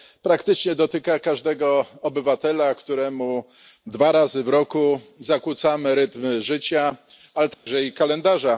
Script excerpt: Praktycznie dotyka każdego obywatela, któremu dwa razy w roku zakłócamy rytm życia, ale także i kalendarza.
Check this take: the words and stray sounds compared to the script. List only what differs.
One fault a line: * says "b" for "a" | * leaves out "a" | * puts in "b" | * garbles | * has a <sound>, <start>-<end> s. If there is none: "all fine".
* has a dropout, 7.5-7.7 s